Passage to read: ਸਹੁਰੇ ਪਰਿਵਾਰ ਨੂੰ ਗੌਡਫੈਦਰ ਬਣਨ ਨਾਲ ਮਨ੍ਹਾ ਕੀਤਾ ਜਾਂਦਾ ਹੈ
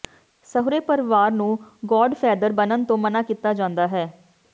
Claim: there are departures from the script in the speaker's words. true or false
true